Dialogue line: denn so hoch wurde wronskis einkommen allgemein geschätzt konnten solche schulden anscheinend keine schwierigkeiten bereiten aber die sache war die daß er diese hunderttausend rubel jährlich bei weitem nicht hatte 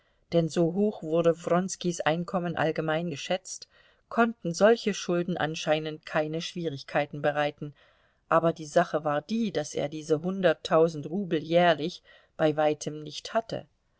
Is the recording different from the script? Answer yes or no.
no